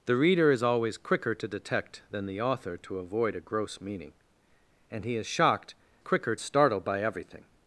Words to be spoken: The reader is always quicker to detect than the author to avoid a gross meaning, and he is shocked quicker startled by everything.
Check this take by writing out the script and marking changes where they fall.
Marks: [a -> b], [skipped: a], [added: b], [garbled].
The reader is always quicker to detect than the author to avoid a gross meaning, and he is shocked quicker startled by everything.